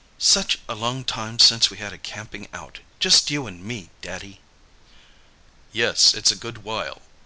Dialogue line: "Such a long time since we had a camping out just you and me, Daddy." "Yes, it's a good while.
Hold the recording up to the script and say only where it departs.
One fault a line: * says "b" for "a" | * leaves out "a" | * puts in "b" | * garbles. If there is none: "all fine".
all fine